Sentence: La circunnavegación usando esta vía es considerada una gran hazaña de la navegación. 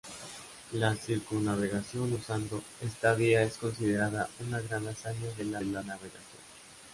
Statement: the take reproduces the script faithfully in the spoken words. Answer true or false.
false